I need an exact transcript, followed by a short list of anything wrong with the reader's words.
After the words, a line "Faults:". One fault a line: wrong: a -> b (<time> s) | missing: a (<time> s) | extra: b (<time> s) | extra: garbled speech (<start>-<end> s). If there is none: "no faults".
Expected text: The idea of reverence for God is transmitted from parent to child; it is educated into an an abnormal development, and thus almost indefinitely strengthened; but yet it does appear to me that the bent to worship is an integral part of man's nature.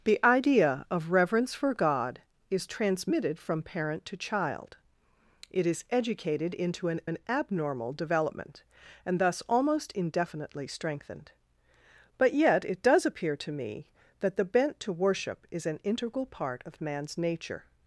The idea of reverence for God is transmitted from parent to child; it is educated into an an abnormal development, and thus almost indefinitely strengthened; but yet it does appear to me that the bent to worship is an integral part of man's nature.
Faults:
no faults